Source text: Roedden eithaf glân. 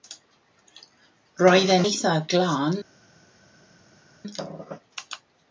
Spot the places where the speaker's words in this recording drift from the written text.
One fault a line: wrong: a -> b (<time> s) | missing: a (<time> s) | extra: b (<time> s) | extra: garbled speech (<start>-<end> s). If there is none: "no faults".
no faults